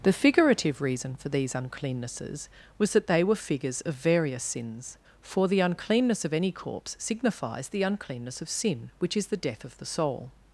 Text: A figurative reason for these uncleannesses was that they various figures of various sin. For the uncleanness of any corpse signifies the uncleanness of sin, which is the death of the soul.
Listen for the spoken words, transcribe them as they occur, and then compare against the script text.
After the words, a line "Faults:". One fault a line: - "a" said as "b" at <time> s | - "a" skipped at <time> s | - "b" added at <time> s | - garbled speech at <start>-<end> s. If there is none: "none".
The figurative reason for these uncleannesses was that they were figures of various sins. For the uncleanness of any corpse signifies the uncleanness of sin, which is the death of the soul.
Faults:
- "A" said as "The" at 0.0 s
- "various" said as "were" at 3.2 s
- "sin" said as "sins" at 4.4 s